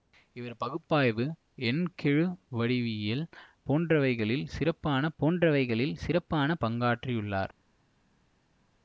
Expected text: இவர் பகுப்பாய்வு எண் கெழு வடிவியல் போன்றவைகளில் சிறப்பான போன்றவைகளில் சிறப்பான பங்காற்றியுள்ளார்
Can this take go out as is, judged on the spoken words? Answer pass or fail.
pass